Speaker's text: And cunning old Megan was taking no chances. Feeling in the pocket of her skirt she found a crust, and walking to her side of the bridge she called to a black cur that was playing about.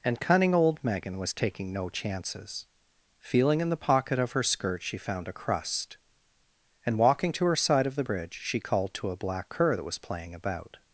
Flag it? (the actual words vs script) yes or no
no